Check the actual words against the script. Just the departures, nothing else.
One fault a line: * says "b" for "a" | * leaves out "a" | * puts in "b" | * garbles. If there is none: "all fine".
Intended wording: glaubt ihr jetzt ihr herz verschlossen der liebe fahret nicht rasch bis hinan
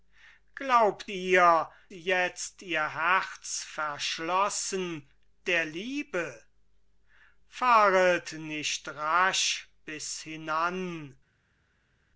all fine